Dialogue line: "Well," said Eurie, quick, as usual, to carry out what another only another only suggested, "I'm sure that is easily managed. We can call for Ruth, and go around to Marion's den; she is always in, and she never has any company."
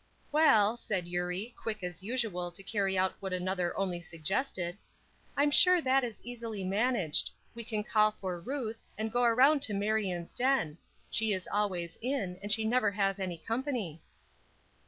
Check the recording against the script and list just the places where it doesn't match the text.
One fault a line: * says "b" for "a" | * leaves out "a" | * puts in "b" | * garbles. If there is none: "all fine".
* leaves out "another only"